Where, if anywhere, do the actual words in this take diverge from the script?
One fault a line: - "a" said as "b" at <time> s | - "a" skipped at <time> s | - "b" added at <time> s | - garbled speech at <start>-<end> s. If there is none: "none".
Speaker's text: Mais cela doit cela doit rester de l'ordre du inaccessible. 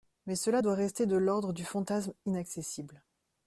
- "cela doit" skipped at 0.7 s
- "fantasme" added at 1.6 s